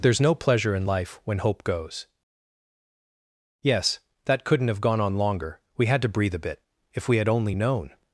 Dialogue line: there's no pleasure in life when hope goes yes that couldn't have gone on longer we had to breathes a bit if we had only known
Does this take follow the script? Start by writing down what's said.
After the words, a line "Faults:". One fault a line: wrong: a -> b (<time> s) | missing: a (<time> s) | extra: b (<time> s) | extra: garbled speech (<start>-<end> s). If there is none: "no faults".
there's no pleasure in life when hope goes yes that couldn't have gone on longer we had to breathe a bit if we had only known
Faults:
wrong: breathes -> breathe (6.1 s)